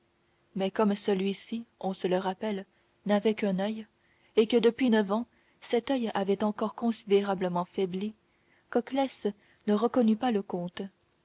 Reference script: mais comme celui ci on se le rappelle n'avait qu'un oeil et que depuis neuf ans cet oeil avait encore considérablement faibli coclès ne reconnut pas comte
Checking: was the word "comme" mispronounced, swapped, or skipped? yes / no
no